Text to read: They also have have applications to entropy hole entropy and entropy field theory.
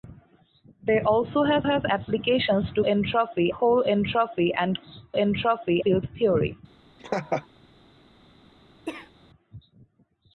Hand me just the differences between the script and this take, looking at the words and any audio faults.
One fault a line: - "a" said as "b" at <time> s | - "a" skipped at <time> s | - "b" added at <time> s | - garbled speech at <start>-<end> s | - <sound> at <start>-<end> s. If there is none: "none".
- laugh at 7.0-7.5 s
- cough at 8.9-9.1 s